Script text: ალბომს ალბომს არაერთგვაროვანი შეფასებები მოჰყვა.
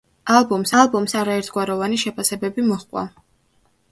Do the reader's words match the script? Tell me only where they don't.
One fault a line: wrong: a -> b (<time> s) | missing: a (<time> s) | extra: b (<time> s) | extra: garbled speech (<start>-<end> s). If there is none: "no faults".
no faults